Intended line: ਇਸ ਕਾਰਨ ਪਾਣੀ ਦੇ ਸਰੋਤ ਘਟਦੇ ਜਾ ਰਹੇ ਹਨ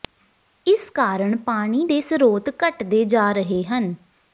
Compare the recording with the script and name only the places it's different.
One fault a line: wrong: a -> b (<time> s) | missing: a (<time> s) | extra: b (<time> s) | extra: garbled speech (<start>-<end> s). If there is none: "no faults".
no faults